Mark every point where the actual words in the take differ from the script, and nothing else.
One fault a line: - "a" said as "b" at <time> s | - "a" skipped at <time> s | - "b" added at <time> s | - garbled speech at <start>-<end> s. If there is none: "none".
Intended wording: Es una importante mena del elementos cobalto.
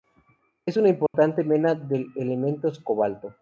none